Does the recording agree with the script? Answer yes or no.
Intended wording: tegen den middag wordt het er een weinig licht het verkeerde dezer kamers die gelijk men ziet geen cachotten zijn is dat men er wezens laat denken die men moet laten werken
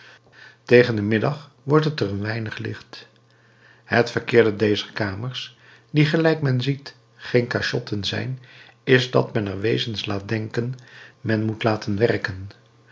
no